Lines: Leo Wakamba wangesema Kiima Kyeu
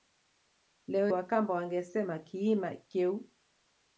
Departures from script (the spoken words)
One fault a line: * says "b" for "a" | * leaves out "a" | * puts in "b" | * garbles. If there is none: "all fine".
all fine